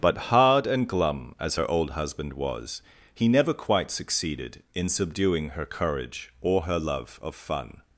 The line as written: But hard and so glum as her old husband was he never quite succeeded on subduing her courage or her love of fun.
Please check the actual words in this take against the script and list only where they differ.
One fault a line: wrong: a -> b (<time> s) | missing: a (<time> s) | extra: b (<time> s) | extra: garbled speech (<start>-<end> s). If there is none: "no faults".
missing: so (0.9 s)
wrong: on -> in (4.7 s)